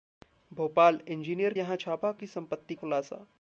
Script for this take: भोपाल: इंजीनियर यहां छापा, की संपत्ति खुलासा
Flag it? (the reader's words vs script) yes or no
no